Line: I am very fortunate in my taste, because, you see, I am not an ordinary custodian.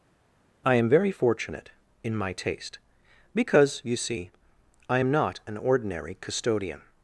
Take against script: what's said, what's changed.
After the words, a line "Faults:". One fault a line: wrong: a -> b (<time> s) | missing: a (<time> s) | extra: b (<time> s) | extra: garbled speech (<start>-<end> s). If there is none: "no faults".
I am very fortunate in my taste, because, you see, I am not an ordinary custodian.
Faults:
no faults